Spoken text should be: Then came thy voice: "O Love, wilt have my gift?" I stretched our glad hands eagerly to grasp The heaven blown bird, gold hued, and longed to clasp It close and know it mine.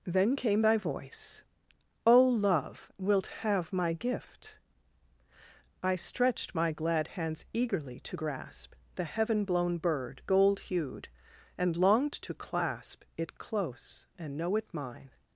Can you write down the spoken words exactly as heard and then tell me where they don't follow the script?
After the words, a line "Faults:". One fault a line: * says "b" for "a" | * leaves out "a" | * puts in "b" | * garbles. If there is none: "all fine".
Then came thy voice: "O Love, wilt have my gift?" I stretched my glad hands eagerly to grasp The heaven blown bird, gold hued, and longed to clasp It close and know it mine.
Faults:
* says "my" for "our"